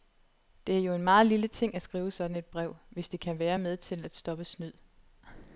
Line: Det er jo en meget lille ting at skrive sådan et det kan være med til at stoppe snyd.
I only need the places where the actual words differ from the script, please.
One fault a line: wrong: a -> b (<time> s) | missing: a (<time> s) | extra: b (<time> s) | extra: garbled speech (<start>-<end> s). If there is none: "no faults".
extra: brev hvis (2.5 s)